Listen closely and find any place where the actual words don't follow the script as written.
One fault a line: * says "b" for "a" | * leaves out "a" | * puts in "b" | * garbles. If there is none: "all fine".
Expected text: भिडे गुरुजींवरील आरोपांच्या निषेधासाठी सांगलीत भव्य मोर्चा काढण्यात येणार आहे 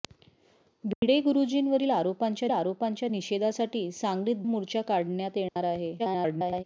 * puts in "आरोपांच्या"
* leaves out "भव्य"
* garbles